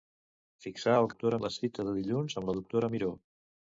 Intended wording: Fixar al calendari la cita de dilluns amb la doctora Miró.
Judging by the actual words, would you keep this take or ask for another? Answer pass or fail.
fail